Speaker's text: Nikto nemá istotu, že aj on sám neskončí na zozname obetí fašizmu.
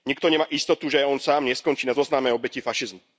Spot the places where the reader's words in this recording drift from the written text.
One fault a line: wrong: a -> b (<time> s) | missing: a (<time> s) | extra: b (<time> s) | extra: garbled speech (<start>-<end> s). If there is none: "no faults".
no faults